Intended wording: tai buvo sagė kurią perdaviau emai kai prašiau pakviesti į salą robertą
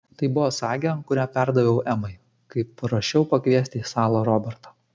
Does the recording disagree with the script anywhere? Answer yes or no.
no